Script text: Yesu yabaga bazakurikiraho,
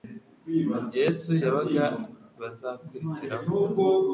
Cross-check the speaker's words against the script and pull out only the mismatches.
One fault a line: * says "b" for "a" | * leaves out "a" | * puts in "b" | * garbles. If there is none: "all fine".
all fine